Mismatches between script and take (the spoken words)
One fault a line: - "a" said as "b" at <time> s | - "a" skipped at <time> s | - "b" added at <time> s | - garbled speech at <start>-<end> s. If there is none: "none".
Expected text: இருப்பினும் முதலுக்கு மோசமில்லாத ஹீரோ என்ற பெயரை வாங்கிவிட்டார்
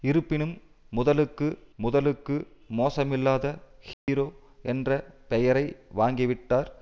- "முதலுக்கு" added at 1.8 s